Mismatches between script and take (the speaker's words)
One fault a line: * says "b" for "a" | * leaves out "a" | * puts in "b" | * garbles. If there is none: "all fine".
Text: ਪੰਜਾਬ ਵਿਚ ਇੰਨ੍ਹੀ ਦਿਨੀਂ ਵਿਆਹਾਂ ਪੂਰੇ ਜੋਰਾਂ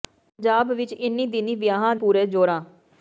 all fine